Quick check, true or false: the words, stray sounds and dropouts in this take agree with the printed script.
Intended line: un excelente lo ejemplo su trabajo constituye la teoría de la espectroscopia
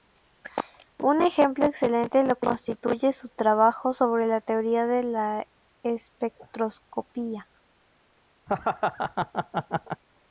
false